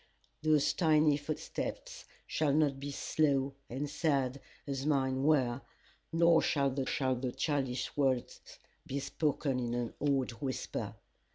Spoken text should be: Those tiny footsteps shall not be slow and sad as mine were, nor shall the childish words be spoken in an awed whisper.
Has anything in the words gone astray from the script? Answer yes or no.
yes